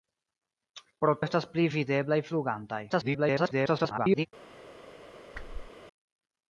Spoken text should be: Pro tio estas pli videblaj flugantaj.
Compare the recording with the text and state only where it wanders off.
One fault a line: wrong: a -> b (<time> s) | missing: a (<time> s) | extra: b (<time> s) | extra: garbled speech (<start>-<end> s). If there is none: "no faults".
missing: tio (1.1 s)
extra: garbled speech (2.9-4.3 s)